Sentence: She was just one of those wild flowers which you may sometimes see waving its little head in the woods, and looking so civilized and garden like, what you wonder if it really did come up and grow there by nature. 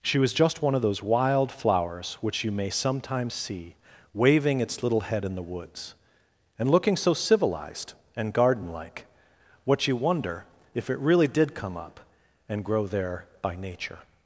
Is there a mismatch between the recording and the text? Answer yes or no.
no